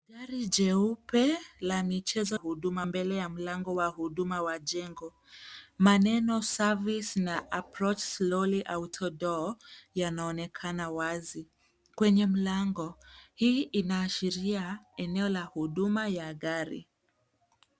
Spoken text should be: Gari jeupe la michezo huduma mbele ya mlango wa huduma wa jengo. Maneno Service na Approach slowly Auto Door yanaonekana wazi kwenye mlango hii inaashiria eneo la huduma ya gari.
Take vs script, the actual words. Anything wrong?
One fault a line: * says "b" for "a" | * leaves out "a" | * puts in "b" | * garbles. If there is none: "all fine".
all fine